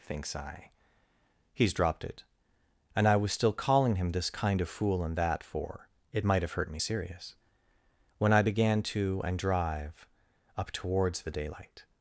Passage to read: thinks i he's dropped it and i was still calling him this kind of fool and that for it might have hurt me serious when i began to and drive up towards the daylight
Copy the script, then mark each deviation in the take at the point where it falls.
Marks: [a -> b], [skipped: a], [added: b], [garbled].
thinks i he's dropped it and i was still calling him this kind of fool and that for it might have hurt me serious when i began to and drive up towards the daylight